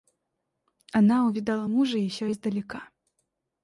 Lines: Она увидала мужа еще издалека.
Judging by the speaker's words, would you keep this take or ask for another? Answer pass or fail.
pass